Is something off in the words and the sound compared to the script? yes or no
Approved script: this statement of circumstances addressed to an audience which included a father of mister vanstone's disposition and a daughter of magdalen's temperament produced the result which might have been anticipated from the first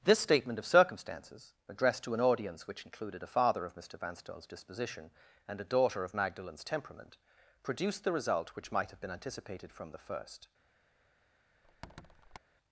yes